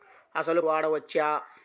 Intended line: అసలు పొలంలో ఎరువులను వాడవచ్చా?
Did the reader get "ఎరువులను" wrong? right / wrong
wrong